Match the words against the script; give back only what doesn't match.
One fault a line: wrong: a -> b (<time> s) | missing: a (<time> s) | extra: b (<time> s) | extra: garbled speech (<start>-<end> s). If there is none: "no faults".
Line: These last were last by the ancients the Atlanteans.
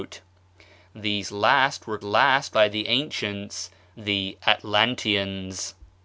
no faults